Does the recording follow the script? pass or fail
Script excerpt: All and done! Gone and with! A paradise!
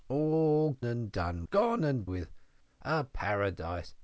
pass